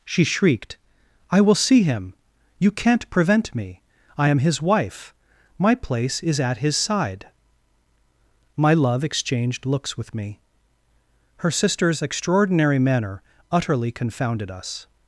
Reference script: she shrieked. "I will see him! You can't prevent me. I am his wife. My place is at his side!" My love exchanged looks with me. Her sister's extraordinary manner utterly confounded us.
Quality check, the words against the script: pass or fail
pass